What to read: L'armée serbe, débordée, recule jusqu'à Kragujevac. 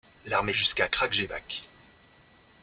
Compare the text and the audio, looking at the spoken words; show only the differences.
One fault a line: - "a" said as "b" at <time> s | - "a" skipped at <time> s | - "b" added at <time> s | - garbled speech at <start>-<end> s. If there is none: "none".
- "serbe débordée recule" skipped at 0.6 s